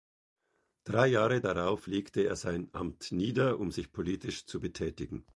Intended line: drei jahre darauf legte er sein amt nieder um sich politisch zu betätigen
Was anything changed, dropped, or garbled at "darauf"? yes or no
no